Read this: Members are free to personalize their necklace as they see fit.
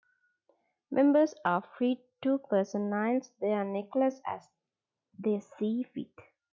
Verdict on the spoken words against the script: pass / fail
pass